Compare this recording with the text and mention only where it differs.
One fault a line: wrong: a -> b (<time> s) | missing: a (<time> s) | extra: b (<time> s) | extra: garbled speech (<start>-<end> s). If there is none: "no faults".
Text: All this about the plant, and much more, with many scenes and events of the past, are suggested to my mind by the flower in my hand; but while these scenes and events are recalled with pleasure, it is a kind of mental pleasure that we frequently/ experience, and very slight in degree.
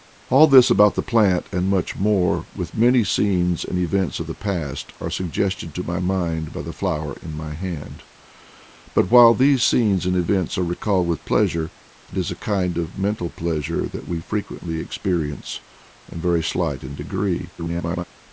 extra: garbled speech (17.6-18.0 s)